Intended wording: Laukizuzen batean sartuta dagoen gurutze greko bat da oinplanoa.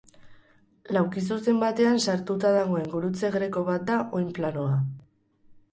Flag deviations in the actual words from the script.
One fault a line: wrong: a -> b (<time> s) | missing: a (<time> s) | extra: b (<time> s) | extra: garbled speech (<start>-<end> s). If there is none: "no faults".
no faults